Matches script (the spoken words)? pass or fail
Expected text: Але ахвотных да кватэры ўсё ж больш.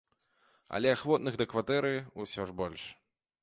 pass